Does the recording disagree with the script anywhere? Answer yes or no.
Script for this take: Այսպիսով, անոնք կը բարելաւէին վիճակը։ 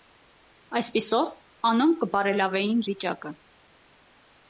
no